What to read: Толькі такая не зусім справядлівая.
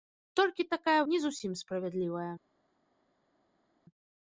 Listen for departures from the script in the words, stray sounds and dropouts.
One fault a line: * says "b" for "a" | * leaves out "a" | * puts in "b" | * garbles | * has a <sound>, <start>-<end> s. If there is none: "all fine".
all fine